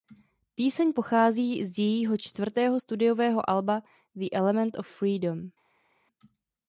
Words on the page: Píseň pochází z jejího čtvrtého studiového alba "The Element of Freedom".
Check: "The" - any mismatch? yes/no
no